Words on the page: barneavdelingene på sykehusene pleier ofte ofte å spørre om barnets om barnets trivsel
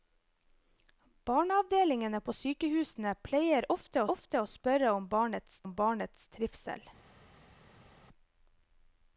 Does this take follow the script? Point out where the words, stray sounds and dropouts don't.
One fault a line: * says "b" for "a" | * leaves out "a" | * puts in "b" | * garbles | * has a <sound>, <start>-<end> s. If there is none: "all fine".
all fine